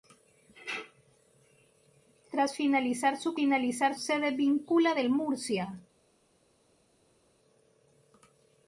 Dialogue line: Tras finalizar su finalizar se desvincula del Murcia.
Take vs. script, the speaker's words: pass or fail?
pass